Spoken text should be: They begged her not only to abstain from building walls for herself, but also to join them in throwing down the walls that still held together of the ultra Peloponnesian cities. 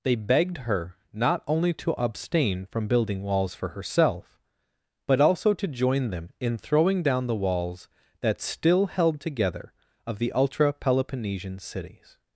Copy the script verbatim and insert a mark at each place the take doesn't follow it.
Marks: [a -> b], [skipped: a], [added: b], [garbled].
They begged her not only to abstain from building walls for herself, but also to join them in throwing down the walls that still held together of the ultra Peloponnesian cities.